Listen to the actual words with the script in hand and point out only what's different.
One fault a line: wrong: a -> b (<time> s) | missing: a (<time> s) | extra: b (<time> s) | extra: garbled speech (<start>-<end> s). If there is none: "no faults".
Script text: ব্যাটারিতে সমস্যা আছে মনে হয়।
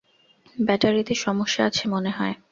no faults